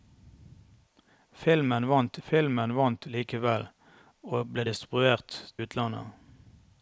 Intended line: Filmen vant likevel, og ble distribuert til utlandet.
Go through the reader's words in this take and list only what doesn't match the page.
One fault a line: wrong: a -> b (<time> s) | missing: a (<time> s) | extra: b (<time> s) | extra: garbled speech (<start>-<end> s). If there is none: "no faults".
extra: filmen vant (2.3 s)
missing: til (5.4 s)